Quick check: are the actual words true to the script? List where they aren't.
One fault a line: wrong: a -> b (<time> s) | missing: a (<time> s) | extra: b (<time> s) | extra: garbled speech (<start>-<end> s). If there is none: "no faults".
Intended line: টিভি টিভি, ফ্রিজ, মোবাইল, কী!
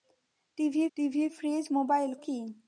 no faults